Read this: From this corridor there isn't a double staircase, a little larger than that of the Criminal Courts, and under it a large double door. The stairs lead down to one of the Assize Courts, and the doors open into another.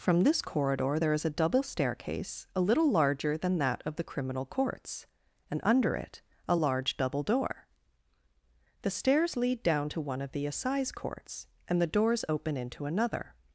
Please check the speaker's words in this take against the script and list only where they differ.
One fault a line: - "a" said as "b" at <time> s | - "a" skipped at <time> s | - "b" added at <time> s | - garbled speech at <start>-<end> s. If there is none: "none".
- "isn't" said as "is" at 1.1 s